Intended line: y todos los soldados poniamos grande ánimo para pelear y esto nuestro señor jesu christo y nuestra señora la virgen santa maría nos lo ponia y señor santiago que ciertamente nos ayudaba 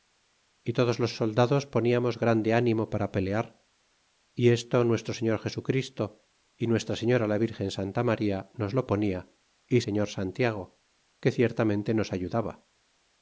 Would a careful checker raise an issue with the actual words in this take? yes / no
no